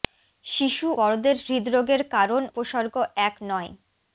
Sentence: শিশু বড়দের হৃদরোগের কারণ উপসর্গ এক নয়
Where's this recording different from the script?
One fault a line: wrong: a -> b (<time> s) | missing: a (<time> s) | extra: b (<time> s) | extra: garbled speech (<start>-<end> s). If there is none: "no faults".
no faults